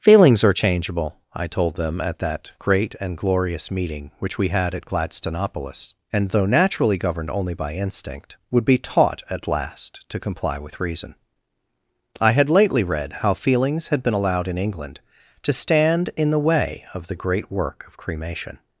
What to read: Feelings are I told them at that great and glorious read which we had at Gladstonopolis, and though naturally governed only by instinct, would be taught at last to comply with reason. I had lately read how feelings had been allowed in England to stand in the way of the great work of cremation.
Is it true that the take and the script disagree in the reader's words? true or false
true